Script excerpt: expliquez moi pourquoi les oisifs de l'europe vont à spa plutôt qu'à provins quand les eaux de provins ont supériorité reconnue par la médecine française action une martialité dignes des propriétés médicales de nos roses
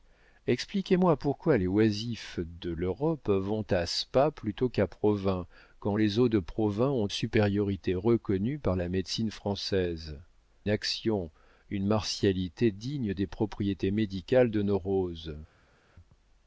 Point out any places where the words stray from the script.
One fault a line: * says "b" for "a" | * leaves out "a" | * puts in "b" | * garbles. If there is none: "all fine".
all fine